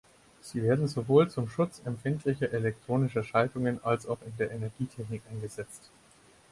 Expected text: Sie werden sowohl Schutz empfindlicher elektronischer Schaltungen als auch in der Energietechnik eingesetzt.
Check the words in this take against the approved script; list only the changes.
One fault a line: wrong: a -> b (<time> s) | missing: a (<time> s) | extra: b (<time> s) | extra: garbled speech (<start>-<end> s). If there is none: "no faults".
extra: zum (1.3 s)